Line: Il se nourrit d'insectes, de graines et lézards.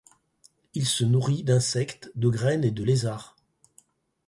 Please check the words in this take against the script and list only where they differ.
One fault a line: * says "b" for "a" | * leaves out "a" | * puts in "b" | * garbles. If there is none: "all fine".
* puts in "de"